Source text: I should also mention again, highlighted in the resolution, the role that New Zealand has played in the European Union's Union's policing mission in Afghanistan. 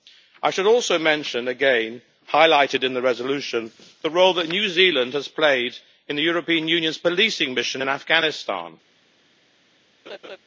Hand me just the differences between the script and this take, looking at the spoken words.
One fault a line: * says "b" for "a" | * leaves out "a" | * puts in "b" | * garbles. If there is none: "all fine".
* leaves out "Union's"